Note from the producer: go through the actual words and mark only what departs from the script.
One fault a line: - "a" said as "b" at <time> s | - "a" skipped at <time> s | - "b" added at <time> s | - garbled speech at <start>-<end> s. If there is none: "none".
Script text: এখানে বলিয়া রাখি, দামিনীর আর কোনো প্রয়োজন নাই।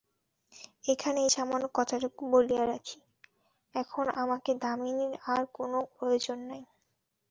- "এই সামান্য কথাটুকু" added at 1.2 s
- "এখন আমাকে" added at 3.8 s